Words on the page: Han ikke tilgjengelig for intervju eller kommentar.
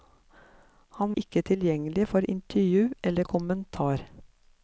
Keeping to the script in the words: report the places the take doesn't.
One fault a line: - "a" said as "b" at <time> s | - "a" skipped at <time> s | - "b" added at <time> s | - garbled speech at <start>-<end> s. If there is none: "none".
none